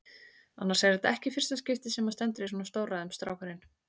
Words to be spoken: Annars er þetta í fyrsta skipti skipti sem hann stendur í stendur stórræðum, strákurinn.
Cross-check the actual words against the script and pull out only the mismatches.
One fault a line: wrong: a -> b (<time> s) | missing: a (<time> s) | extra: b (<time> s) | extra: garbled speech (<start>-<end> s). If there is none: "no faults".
extra: ekki (1.2 s)
missing: skipti (1.9 s)
wrong: stendur -> svona (2.5 s)